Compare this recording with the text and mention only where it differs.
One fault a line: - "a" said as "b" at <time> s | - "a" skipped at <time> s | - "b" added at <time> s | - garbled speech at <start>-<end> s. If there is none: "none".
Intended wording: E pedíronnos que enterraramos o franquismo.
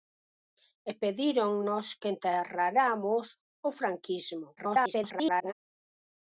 - garbled speech at 4.6-5.5 s